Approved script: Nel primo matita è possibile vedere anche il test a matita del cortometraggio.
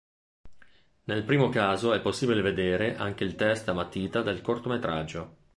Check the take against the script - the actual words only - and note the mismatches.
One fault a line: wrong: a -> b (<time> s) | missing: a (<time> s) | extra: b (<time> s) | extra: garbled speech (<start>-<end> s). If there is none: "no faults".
wrong: matita -> caso (1.5 s)